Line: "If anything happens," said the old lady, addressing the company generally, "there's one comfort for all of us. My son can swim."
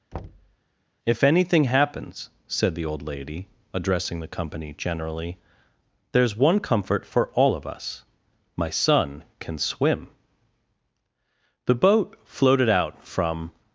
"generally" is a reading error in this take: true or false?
false